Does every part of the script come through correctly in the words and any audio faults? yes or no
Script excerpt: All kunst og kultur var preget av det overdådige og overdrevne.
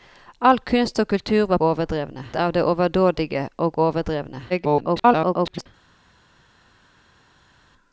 no